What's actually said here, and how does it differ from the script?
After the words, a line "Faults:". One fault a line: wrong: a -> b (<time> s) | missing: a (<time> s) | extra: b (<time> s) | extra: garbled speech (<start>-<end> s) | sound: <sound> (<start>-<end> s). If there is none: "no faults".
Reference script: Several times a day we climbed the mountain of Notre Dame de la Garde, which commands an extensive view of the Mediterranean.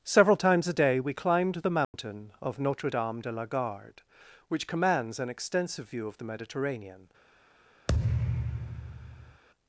Several times a day we climbed the mountain of Notre Dame de la Garde, which commands an extensive view of the Mediterranean.
Faults:
sound: dropout (1.8-1.9 s)
sound: thud (7.9-9.4 s)